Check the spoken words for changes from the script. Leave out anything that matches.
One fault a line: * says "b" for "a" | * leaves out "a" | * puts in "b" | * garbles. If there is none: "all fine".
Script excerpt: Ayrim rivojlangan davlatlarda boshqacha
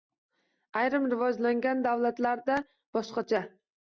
all fine